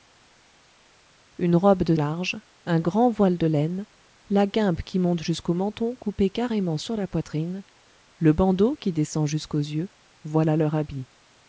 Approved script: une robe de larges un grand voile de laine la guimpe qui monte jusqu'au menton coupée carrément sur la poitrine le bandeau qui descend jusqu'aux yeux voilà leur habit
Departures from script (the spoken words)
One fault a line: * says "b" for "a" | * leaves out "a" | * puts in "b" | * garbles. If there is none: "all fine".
all fine